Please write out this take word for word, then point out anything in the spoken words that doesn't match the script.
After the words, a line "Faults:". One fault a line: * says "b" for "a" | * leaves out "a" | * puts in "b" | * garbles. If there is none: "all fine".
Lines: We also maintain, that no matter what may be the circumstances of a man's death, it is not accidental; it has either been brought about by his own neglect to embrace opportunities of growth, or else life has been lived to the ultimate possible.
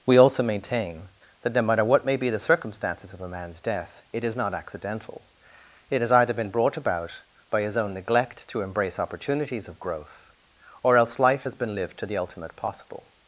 We also maintain, that no matter what may be the circumstances of a man's death, it is not accidental; it has either been brought about by his own neglect to embrace opportunities of growth, or else life has been lived to the ultimate possible.
Faults:
all fine